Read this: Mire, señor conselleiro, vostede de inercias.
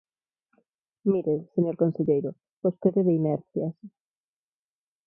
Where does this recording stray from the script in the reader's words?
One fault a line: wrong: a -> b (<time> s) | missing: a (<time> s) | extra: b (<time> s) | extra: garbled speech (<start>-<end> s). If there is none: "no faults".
no faults